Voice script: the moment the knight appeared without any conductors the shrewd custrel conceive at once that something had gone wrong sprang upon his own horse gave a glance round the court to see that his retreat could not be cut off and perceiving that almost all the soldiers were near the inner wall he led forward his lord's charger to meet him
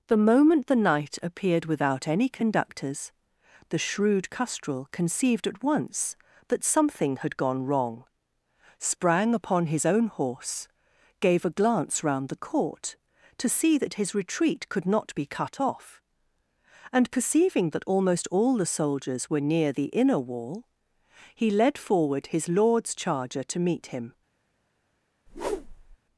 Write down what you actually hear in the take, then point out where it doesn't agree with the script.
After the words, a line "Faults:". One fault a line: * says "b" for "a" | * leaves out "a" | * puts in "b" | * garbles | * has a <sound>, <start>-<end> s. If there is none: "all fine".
the moment the knight appeared without any conductors the shrewd custrel conceived at once that something had gone wrong sprang upon his own horse gave a glance round the court to see that his retreat could not be cut off and perceiving that almost all the soldiers were near the inner wall he led forward his lord's charger to meet him
Faults:
* says "conceived" for "conceive"
* has a whoosh, 25.3-26.0 s